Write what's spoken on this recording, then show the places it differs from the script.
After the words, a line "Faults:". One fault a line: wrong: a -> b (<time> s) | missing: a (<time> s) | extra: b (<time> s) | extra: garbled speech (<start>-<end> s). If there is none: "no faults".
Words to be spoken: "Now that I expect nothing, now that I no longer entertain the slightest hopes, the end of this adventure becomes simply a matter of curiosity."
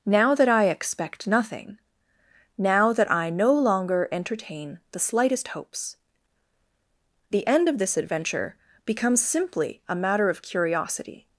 "Now that I expect nothing, now that I no longer entertain the slightest hopes, the end of this adventure becomes simply a matter of curiosity."
Faults:
no faults